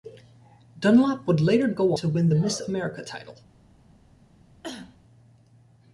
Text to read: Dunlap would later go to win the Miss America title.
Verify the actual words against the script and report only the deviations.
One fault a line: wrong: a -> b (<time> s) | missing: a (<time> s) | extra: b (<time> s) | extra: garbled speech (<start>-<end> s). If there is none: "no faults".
no faults